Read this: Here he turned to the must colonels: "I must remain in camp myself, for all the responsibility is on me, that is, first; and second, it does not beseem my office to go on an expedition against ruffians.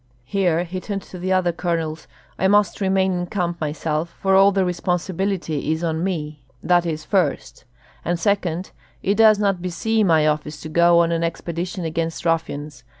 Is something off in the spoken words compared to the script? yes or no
yes